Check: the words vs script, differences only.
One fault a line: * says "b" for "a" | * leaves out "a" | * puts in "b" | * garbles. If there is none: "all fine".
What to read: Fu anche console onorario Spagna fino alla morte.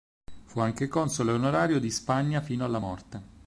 * puts in "di"